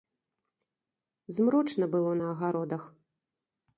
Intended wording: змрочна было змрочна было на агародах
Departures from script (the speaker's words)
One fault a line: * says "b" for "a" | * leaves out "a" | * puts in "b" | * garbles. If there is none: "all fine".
* leaves out "змрочна было"